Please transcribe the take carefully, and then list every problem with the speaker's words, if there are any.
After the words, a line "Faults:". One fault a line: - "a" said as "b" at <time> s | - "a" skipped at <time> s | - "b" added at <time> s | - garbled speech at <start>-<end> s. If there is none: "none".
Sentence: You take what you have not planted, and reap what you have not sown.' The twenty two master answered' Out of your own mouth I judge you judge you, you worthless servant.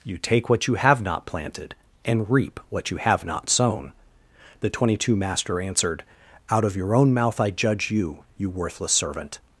You take what you have not planted, and reap what you have not sown.' The twenty two master answered' Out of your own mouth I judge you, you worthless servant.
Faults:
- "judge you" skipped at 8.2 s